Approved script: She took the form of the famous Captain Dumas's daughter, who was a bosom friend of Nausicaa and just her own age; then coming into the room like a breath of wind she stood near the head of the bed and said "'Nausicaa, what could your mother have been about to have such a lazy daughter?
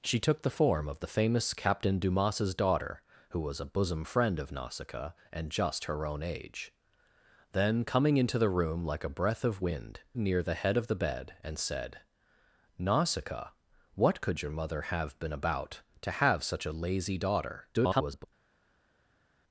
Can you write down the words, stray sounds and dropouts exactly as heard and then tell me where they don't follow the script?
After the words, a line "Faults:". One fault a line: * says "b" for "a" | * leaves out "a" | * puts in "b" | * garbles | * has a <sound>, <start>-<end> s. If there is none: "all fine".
She took the form of the famous Captain Dumas's daughter, who was a bosom friend of Nausicaa and just her own age; then coming into the room like a breath of wind near the head of the bed and said "'Nausicaa, what could your mother have been about to have such a lazy daughter? [garbled]
Faults:
* leaves out "she stood"
* garbles